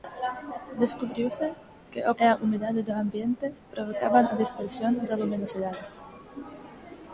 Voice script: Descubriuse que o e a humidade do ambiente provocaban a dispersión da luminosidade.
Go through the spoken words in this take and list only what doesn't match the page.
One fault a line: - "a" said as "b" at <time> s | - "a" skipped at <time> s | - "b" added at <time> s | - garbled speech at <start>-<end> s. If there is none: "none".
none